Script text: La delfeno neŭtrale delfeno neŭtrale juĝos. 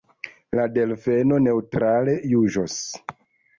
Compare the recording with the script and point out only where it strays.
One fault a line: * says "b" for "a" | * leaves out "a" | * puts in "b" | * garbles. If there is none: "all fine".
* leaves out "delfeno neŭtrale"